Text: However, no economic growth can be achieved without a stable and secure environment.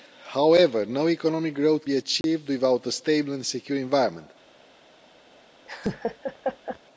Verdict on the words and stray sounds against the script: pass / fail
fail